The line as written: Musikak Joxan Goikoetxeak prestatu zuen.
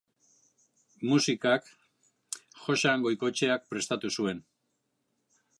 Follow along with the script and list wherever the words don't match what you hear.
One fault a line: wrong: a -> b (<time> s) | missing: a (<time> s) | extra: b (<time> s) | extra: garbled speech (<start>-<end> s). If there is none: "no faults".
no faults